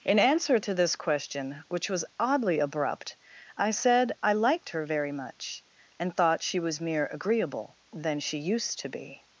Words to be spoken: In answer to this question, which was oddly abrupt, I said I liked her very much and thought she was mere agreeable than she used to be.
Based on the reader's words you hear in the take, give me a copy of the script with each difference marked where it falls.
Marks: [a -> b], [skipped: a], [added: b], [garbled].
In answer to this question, which was oddly abrupt, I said I liked her very much and thought she was mere agreeable than she used to be.